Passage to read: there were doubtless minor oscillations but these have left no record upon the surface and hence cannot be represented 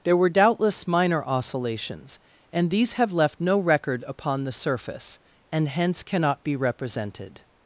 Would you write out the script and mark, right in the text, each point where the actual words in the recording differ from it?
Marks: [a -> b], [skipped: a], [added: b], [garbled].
there were doubtless minor oscillations [but -> and] these have left no record upon the surface and hence cannot be represented